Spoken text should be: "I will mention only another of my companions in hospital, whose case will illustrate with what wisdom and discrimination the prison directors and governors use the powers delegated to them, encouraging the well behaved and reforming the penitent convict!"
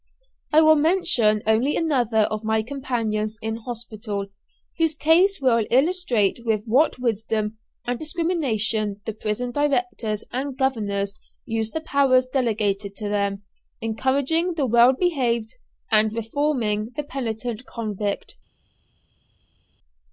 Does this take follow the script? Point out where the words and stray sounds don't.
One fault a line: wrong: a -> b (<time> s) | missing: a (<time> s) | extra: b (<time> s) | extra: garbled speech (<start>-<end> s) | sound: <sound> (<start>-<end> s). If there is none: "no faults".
no faults